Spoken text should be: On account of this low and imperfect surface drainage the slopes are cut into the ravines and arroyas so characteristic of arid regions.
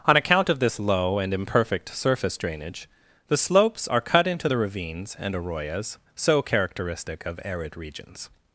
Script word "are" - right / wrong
right